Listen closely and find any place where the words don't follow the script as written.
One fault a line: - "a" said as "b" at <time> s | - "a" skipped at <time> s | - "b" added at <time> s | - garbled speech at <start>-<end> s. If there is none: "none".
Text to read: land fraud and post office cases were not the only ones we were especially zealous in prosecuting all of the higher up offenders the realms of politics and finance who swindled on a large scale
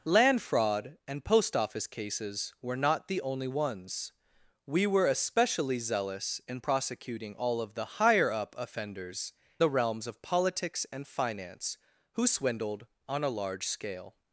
none